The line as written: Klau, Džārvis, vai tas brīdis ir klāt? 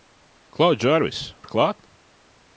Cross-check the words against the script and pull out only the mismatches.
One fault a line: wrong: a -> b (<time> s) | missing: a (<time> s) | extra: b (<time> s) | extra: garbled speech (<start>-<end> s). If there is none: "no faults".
missing: vai tas brīdis (1.2 s)